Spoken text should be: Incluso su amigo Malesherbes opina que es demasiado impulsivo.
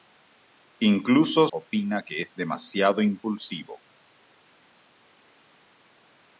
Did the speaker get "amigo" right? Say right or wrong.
wrong